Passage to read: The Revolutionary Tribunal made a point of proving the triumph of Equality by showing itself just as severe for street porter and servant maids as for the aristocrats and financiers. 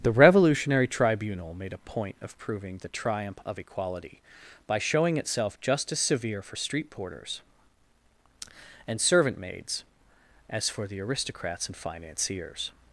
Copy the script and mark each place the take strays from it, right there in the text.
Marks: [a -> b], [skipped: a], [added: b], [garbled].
The Revolutionary Tribunal made a point of proving the triumph of Equality by showing itself just as severe for street [porter -> porters] and servant maids as for the aristocrats and financiers.